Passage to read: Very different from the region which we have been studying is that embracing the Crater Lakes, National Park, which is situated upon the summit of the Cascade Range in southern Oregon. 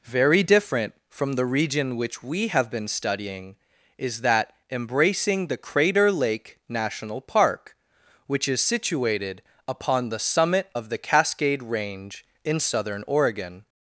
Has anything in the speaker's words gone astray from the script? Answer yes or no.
yes